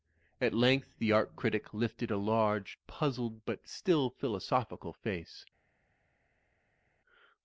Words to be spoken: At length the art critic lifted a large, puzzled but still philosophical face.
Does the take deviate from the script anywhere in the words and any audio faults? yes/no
no